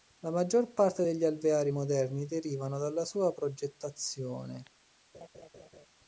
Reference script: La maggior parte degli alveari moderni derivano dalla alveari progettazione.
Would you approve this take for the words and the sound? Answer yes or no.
no